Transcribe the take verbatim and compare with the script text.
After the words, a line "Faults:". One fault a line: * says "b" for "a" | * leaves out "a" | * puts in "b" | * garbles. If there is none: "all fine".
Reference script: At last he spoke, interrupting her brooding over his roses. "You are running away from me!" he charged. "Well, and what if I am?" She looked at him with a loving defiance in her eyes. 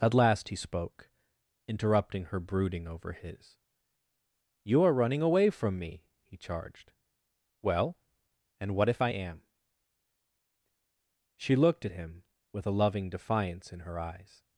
At last he spoke, interrupting her brooding over his. "You are running away from me!" he charged. "Well, and what if I am?" She looked at him with a loving defiance in her eyes.
Faults:
* leaves out "roses"